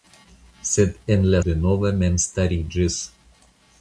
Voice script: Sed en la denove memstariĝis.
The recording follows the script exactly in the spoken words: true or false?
true